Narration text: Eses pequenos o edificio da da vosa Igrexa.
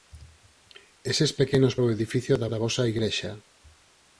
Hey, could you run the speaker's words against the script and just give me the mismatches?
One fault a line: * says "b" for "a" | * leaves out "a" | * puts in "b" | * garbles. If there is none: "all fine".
all fine